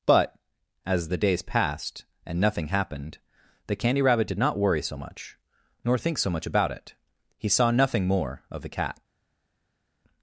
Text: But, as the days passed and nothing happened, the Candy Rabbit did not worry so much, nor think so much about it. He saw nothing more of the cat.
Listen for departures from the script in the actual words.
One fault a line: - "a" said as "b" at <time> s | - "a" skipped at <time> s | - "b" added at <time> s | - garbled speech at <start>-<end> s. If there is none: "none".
none